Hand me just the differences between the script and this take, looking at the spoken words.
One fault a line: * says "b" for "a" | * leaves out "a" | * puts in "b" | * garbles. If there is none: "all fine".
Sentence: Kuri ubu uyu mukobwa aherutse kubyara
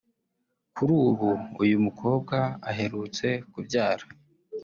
all fine